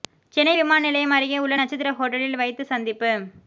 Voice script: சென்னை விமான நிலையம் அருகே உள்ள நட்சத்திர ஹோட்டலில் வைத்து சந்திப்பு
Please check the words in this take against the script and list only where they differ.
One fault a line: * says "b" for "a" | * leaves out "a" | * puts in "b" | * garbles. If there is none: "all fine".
all fine